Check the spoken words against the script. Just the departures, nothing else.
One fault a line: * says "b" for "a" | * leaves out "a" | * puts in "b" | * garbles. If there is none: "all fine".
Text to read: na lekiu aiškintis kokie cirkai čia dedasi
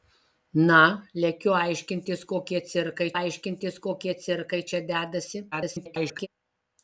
* puts in "aiškintis kokie cirkai"
* garbles